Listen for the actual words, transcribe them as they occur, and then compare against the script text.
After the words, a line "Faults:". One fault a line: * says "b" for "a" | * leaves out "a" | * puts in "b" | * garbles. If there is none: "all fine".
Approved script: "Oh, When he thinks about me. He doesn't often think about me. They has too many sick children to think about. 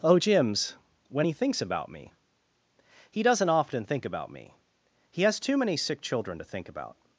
"Oh, Jims, when he thinks about me. He doesn't often think about me. He has too many sick children to think about.
Faults:
* puts in "Jims"
* says "He" for "They"